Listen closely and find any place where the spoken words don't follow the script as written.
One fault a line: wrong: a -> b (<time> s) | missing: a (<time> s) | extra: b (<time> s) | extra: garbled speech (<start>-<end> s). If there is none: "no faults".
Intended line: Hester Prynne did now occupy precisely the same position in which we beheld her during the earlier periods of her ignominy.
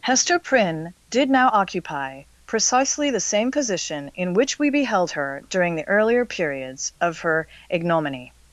no faults